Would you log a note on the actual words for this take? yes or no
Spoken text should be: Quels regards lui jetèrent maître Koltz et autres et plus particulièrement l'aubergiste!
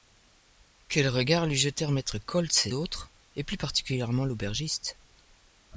no